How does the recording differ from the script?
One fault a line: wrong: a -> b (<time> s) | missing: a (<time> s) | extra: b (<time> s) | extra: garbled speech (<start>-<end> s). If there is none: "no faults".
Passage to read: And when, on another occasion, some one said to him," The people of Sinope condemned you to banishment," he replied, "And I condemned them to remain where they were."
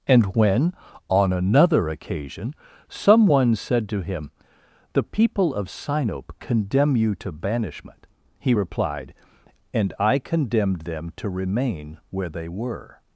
wrong: condemned -> condemn (6.4 s)